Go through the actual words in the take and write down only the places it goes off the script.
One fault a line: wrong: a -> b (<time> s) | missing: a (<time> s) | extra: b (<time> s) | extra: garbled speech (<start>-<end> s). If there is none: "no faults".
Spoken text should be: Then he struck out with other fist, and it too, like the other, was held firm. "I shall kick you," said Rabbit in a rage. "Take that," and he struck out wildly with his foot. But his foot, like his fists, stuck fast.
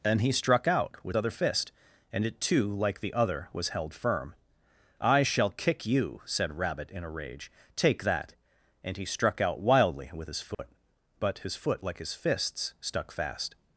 no faults